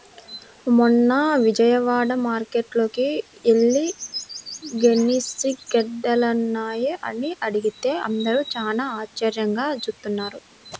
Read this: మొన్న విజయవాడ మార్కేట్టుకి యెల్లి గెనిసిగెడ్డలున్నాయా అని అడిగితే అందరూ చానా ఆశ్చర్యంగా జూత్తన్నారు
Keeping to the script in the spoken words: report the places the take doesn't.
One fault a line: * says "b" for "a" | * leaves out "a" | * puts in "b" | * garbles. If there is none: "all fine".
all fine